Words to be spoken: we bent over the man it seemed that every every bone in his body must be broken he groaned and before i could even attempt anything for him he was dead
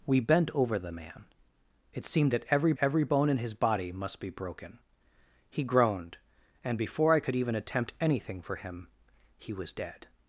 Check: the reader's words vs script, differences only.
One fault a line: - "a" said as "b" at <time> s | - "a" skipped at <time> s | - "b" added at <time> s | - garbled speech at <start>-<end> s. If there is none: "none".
none